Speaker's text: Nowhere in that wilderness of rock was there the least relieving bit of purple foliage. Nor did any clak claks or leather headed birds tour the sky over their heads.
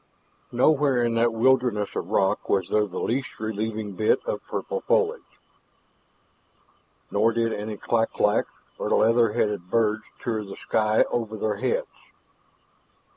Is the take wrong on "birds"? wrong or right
right